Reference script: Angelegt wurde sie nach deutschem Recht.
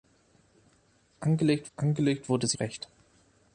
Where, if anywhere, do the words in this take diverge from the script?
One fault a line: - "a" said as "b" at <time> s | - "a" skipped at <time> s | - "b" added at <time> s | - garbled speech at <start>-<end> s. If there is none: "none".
- "angelegt" added at 1.8 s
- "nach deutschem" skipped at 2.6 s